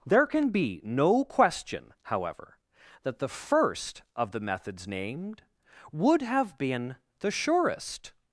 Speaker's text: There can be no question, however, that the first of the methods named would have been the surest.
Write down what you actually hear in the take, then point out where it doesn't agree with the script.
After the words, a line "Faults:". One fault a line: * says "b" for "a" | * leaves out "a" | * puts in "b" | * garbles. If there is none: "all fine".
There can be no question, however, that the first of the methods named would have been the surest.
Faults:
all fine